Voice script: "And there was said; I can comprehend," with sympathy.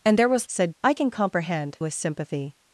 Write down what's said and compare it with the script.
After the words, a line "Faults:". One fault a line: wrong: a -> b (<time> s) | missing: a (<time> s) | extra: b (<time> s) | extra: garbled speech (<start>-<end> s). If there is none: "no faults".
"And there was said; I can comprehend," with sympathy.
Faults:
no faults